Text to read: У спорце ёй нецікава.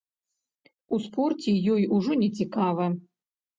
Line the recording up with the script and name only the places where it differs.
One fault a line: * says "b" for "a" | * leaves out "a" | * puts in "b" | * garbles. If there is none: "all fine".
* puts in "ужо"